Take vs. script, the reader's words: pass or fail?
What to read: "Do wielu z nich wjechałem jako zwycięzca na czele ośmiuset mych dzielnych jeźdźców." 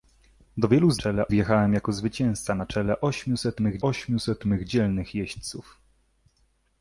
fail